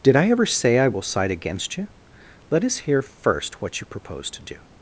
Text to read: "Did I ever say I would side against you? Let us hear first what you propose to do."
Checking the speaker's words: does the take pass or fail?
fail